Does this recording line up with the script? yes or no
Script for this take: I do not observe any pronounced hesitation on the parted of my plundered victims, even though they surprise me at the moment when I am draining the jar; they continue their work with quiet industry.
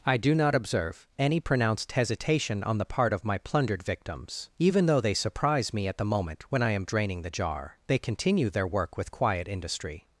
no